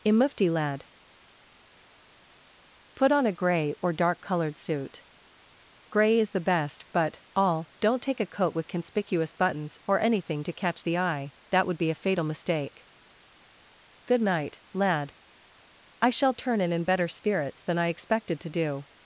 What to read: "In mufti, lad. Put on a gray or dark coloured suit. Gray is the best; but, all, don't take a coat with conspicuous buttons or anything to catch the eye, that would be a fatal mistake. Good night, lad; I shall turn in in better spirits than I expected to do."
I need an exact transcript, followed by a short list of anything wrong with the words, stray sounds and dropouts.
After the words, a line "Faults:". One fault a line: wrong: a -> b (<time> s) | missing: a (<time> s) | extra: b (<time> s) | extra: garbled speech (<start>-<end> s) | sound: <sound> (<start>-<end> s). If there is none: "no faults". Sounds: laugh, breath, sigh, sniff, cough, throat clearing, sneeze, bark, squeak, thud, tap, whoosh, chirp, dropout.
"In mufti, lad. Put on a gray or dark coloured suit. Gray is the best; but, all, don't take a coat with conspicuous buttons or anything to catch the eye, that would be a fatal mistake. Good night, lad; I shall turn in in better spirits than I expected to do."
Faults:
no faults